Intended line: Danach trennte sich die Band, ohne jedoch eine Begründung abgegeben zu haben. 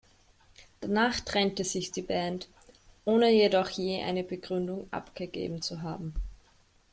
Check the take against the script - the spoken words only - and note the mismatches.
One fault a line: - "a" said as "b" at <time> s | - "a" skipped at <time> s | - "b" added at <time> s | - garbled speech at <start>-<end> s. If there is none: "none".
- "je" added at 3.7 s